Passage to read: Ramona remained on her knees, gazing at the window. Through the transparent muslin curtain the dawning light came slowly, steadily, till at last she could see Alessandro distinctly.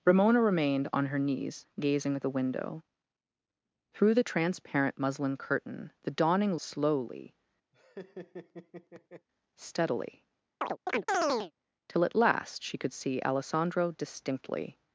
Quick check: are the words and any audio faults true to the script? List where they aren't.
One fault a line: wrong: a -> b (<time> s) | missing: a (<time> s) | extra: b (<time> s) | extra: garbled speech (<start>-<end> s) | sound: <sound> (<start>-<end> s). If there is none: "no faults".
missing: light came (6.6 s)
sound: laugh (7.7-9.3 s)
sound: chirp (10.6-11.5 s)